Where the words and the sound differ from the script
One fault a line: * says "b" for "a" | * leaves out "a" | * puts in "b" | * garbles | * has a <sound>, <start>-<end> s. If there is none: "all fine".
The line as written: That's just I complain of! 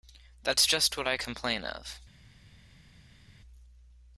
* puts in "what"